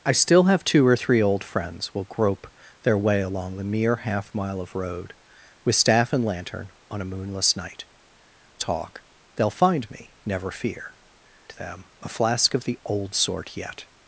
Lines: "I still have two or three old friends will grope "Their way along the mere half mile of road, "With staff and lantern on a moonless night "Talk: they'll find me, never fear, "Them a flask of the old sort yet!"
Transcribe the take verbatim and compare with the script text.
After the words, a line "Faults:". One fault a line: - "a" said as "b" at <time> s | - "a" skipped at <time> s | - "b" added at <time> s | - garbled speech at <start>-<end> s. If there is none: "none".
"I still have two or three old friends will grope "Their way along the mere half mile of road, "With staff and lantern on a moonless night "Talk: they'll find me, never fear, "Them a flask of the old sort yet!"
Faults:
none